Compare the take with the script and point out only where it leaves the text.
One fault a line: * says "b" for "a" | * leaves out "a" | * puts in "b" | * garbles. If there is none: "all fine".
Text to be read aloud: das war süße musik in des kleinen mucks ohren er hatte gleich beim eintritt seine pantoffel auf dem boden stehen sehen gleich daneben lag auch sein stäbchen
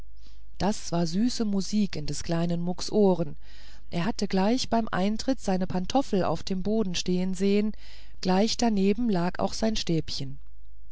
all fine